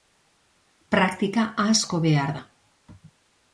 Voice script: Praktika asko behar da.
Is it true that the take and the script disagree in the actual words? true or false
false